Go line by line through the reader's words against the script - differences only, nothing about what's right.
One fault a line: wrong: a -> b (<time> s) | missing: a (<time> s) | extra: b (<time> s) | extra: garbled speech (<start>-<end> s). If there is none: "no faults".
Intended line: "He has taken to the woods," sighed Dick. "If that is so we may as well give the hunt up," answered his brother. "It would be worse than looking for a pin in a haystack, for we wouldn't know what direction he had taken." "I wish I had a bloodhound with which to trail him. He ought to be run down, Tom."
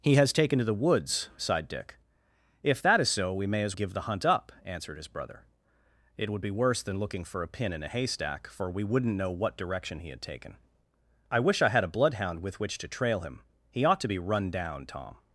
missing: well (3.8 s)